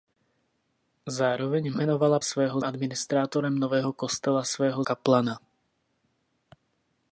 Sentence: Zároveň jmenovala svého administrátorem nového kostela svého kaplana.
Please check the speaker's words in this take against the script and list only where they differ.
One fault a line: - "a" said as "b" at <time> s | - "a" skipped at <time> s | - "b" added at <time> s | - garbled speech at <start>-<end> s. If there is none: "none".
none